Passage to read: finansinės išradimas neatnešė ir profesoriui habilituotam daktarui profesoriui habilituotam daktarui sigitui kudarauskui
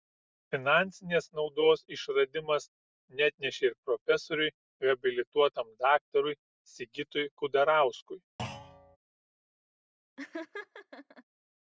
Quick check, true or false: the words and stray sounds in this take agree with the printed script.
false